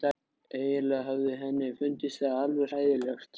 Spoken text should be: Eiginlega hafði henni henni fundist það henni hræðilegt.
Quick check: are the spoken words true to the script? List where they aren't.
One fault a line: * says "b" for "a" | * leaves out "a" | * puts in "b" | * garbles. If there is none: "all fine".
* leaves out "henni"
* says "alveg" for "henni"